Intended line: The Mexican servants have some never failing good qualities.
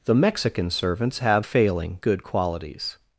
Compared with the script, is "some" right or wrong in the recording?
wrong